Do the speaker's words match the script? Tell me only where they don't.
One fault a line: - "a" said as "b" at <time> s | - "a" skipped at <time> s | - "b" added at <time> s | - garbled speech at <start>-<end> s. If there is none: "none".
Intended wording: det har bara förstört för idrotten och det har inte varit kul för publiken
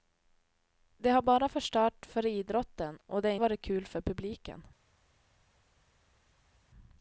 - "inte" skipped at 3.4 s